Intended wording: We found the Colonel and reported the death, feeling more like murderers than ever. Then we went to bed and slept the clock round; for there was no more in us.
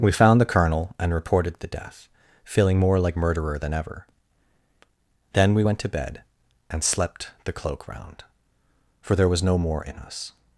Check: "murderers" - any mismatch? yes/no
yes